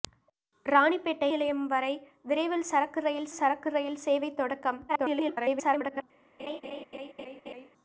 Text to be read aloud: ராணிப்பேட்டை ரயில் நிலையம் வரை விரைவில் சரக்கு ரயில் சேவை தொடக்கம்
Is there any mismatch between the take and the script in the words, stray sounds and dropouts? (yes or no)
yes